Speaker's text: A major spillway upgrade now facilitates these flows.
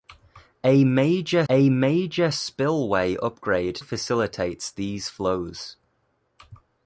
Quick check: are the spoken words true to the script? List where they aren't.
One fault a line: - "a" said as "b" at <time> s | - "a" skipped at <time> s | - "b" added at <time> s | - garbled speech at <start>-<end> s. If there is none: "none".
- "a major" added at 1.5 s
- "now" skipped at 3.8 s